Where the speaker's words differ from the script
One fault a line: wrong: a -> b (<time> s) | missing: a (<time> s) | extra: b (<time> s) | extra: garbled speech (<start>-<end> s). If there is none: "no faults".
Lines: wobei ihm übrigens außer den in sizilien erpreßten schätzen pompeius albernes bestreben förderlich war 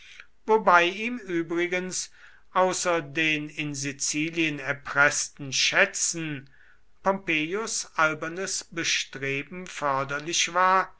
no faults